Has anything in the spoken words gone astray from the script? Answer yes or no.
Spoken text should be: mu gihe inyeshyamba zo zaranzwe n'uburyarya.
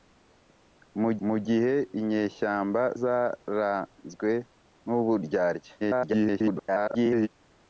yes